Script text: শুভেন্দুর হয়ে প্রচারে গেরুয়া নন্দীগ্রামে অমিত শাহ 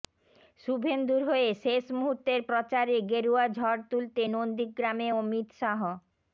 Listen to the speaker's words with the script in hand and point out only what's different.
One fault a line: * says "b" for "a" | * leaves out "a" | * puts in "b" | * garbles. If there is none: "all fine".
* puts in "শেষ মুহূর্তের"
* puts in "ঝড় তুলতে"